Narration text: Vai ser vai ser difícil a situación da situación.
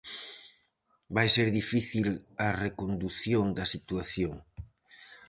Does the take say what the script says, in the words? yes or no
no